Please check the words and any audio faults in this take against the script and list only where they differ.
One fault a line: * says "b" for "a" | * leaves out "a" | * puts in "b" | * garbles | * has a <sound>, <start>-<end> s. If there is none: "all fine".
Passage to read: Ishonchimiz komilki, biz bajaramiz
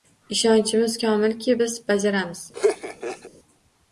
* has a laugh, 2.5-3.3 s